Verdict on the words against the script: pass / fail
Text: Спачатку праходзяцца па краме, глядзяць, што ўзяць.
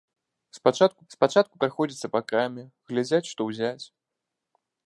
fail